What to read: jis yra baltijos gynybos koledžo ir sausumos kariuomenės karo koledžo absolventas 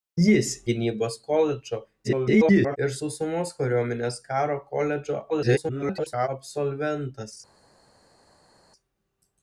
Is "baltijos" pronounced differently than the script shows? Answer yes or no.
yes